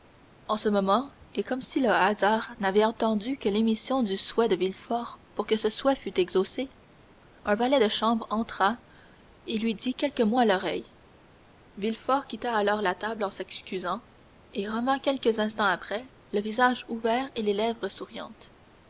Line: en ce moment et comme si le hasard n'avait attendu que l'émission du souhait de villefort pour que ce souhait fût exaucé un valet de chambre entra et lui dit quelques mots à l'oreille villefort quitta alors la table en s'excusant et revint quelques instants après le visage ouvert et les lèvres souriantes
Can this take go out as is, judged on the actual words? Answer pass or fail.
pass